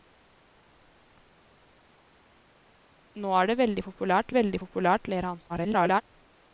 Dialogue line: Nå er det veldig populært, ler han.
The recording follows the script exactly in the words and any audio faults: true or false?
false